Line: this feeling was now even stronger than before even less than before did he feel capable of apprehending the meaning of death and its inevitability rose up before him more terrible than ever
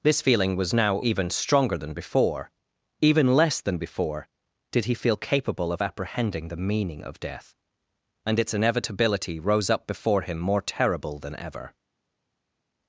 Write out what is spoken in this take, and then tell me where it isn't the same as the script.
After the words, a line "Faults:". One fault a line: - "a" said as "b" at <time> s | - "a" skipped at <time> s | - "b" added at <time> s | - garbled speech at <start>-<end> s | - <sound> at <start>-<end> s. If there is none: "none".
this feeling was now even stronger than before even less than before did he feel capable of apprehending the meaning of death and its inevitability rose up before him more terrible than ever
Faults:
none